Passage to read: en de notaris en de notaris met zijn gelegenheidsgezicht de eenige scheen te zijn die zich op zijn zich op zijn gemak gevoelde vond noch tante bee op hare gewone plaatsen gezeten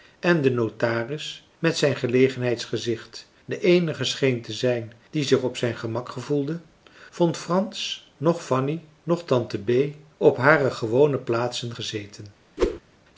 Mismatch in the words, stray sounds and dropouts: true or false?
true